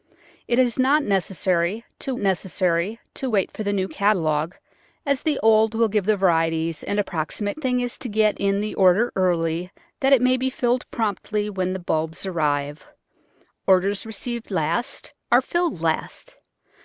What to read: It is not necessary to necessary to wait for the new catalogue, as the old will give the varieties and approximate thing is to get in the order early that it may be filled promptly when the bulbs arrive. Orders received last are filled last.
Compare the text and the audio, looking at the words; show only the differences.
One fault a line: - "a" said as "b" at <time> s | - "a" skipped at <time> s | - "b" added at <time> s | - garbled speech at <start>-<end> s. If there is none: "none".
none